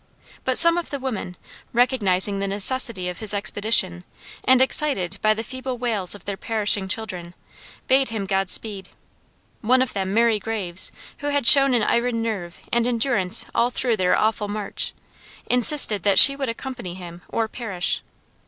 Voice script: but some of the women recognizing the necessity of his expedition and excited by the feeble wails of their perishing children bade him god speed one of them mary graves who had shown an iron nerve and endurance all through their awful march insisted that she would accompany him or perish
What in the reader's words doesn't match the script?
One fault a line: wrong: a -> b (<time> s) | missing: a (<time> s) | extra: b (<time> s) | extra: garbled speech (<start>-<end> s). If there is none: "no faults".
no faults